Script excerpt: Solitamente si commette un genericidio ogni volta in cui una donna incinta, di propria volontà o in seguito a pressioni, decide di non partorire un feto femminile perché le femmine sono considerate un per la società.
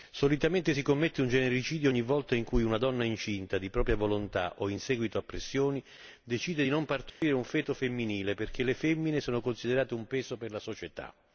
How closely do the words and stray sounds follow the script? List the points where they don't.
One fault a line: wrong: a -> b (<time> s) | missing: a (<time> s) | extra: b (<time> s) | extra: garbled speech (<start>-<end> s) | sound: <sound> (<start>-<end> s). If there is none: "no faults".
sound: dropout (7.1-7.2 s)
extra: peso (10.1 s)